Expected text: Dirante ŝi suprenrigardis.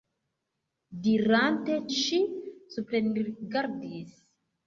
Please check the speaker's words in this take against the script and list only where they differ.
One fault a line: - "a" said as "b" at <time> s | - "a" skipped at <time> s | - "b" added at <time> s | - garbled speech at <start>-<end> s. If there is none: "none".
none